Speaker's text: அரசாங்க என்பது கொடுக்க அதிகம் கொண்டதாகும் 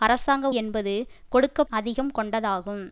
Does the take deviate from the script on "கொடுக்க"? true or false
false